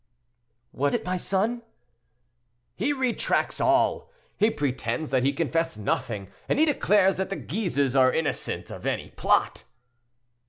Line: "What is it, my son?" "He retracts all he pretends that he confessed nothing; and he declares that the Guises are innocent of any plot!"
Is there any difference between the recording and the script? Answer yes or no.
yes